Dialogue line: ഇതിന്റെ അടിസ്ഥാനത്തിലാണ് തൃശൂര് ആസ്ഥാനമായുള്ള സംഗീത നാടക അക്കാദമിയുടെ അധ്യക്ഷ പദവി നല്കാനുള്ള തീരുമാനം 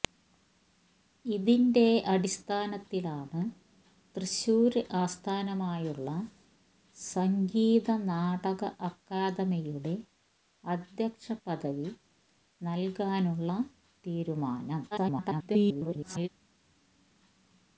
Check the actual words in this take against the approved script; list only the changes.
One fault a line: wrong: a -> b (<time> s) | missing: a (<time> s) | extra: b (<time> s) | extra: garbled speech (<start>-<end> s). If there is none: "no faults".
extra: garbled speech (14.9-16.3 s)